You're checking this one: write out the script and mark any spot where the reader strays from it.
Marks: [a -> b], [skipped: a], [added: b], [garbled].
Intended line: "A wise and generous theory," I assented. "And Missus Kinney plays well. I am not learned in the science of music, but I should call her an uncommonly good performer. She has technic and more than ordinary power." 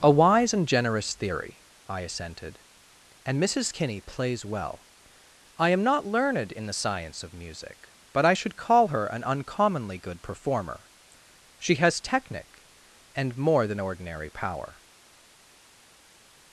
"A wise and generous theory," I assented. "And Missus Kinney plays well. I am not learned in the science of music, but I should call her an uncommonly good performer. She has technic and more than ordinary power."